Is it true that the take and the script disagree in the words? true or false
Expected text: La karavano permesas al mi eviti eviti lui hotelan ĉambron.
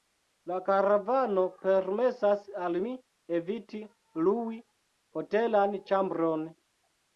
true